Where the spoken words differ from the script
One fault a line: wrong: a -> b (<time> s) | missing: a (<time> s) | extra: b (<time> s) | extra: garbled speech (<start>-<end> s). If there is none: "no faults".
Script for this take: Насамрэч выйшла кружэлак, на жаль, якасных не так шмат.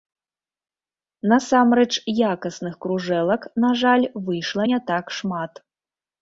wrong: выйшла -> якасных (2.3 s)
wrong: якасных -> выйшла (4.3 s)